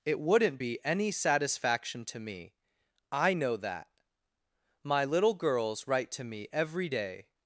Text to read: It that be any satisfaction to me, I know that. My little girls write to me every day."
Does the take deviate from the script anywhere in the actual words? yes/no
yes